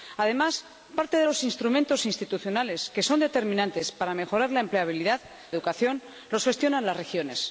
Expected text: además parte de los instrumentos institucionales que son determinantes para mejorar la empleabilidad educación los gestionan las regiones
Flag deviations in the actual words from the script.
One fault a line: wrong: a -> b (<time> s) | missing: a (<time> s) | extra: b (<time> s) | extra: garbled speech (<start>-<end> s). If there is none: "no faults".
no faults